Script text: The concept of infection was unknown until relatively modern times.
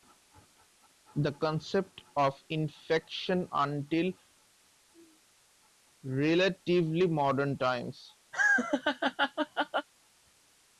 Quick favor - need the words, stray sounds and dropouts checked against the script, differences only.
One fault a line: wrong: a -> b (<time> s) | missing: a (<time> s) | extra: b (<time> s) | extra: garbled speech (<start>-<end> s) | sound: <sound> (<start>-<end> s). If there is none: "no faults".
missing: was unknown (3.5 s)
sound: laugh (8.3-9.9 s)